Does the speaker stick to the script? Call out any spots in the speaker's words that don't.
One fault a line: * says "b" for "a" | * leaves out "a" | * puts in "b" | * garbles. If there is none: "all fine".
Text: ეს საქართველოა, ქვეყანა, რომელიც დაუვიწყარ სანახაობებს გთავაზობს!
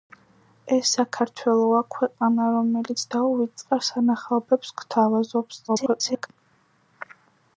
* garbles